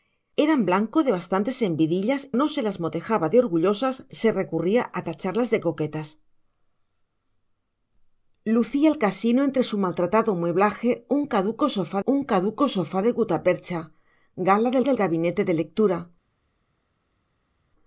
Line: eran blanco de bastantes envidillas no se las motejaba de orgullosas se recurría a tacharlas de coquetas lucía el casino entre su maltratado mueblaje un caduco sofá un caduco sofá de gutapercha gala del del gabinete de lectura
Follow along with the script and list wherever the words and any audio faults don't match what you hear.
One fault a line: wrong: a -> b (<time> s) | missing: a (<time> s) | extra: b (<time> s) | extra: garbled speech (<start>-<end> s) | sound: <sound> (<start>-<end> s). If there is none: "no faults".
no faults